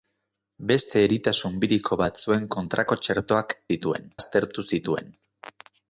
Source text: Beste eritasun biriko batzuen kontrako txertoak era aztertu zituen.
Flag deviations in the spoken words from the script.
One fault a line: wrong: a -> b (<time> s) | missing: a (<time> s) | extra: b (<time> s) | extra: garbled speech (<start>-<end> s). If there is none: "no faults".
wrong: era -> zituen (3.7 s)